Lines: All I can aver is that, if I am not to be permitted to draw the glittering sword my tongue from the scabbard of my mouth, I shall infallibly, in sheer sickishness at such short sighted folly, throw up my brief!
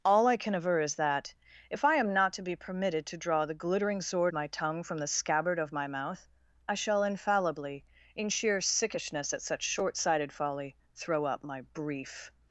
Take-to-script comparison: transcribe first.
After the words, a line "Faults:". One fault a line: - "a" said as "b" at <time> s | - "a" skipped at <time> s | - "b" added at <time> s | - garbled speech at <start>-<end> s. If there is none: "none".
All I can aver is that, if I am not to be permitted to draw the glittering sword my tongue from the scabbard of my mouth, I shall infallibly, in sheer sickishness at such short sighted folly, throw up my brief!
Faults:
none